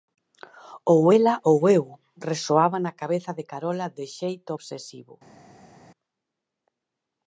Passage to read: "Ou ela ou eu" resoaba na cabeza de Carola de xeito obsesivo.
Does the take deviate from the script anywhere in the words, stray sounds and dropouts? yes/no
no